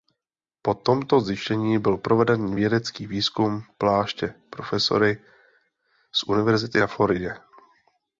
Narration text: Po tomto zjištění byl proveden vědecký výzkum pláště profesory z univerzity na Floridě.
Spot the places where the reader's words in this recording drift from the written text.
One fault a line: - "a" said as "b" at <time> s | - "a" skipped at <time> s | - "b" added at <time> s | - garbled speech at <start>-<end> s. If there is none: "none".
none